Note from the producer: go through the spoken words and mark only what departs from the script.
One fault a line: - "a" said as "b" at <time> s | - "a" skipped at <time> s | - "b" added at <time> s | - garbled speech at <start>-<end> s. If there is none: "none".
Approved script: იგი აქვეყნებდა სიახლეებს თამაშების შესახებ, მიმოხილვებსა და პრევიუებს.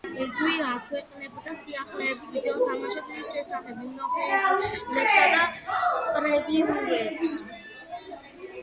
- "ვიდეო" added at 2.3 s